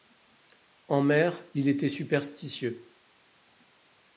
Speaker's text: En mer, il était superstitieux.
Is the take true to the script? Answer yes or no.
yes